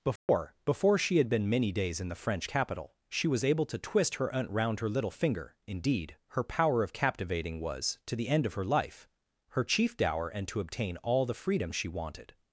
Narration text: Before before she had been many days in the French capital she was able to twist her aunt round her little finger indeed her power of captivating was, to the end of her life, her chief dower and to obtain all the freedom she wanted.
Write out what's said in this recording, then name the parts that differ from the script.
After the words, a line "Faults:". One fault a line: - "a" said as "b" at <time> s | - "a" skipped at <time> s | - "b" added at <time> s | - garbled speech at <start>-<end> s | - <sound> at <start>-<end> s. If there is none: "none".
Before before she had been many days in the French capital she was able to twist her aunt round her little finger indeed her power of captivating was, to the end of her life, her chief dower and to obtain all the freedom she wanted.
Faults:
- dropout at 0.2-0.3 s